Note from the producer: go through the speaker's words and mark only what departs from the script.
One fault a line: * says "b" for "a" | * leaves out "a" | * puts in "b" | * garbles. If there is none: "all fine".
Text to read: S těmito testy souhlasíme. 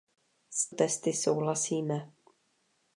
* leaves out "těmito"